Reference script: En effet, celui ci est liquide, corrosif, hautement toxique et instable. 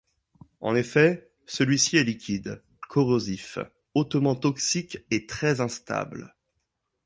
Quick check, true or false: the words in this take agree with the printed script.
false